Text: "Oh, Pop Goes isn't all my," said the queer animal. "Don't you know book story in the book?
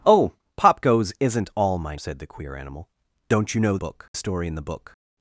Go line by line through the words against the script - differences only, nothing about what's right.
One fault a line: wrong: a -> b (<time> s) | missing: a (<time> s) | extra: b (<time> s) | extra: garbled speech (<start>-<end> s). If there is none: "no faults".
no faults